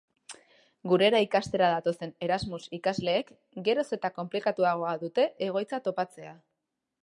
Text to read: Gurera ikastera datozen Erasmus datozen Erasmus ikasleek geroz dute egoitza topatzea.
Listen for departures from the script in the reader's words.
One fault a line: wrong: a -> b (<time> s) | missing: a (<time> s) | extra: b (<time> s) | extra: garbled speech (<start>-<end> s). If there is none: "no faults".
wrong: datozen Erasmus ikasleek geroz -> ikasleek geroz eta konplikatuagoa (2.8 s)